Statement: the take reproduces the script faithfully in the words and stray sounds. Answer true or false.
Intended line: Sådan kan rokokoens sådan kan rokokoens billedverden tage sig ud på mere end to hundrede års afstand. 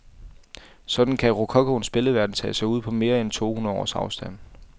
false